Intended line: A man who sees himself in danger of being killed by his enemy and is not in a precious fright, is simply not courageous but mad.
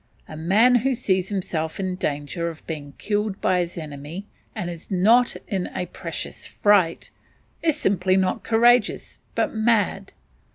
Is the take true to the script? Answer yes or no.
yes